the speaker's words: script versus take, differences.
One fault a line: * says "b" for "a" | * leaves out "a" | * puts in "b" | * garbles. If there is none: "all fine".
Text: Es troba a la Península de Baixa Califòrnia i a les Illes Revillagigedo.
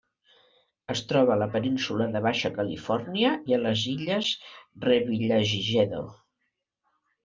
all fine